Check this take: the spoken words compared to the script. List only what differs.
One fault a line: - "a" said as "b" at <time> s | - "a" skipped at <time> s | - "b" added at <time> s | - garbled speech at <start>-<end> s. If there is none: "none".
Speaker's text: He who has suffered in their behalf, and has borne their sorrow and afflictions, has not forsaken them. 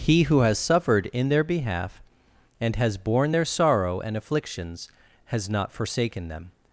none